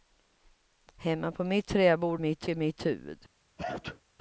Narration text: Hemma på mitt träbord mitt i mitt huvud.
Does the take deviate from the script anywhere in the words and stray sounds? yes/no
yes